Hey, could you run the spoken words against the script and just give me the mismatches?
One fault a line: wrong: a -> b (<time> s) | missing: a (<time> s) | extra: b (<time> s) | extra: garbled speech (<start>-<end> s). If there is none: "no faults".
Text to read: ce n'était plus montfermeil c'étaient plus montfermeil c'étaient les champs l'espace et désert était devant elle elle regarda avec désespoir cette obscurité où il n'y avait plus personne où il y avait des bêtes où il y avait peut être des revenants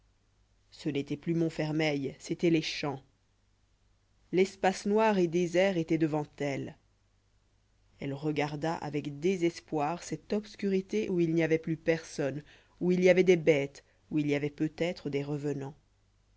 missing: plus montfermeil c'étaient (2.5 s)
extra: noir (4.9 s)